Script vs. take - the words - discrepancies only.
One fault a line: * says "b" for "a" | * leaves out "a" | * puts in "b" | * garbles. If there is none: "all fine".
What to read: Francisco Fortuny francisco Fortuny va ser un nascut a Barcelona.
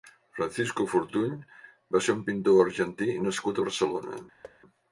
* leaves out "francisco Fortuny"
* puts in "pintor argentí"